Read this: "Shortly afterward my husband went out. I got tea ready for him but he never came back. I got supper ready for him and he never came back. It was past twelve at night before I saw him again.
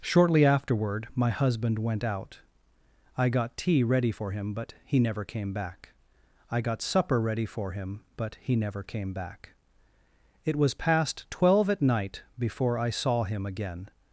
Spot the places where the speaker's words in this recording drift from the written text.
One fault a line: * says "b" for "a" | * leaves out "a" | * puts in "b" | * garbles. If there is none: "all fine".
* says "but" for "and"